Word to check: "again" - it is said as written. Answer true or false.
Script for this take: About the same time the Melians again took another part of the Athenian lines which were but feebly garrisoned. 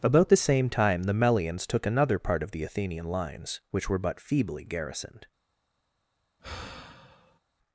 false